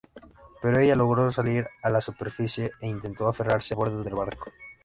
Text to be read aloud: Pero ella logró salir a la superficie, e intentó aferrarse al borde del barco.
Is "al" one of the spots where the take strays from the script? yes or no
yes